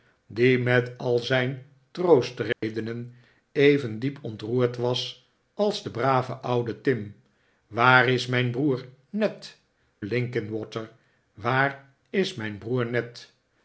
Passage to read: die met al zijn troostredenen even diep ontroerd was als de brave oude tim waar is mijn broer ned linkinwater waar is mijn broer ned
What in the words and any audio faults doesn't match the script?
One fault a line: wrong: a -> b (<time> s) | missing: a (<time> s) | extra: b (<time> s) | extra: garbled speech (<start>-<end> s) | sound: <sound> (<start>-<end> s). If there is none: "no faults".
sound: dropout (2.5-2.6 s)